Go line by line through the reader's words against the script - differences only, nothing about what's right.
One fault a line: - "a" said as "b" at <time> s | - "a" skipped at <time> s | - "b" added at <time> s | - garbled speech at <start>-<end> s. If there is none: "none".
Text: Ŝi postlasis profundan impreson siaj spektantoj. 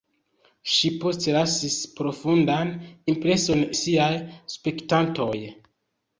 none